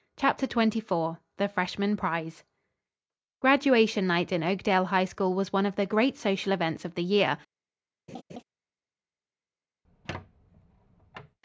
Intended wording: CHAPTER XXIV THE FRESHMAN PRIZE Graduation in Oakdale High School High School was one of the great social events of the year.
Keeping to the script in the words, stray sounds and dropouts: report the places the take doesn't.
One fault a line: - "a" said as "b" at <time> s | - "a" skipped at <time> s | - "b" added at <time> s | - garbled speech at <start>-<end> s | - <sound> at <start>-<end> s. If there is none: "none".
- "night" added at 4.1 s
- "High School" skipped at 5.3 s
- laugh at 8.1-8.4 s
- squeak at 9.8-11.4 s